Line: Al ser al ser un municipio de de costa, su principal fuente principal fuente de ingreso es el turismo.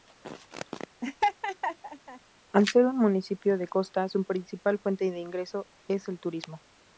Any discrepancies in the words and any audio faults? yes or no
yes